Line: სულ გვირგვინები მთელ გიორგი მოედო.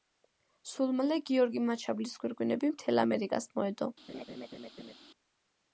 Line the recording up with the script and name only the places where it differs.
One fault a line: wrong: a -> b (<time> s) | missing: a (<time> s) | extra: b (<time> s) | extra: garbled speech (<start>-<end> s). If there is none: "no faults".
extra: მალე გიორგი მაჩაბლის (1.0 s)
wrong: გიორგი -> ამერიკას (3.0 s)